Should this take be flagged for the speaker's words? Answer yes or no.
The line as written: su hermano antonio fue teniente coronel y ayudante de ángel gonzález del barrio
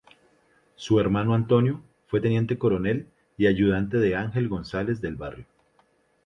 no